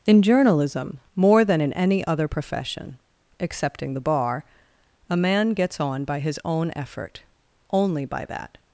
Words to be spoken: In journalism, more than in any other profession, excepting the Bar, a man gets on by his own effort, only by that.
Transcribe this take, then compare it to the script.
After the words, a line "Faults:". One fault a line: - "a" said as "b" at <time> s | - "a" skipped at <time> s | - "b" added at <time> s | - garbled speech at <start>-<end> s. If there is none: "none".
In journalism, more than in any other profession, excepting the Bar, a man gets on by his own effort, only by that.
Faults:
none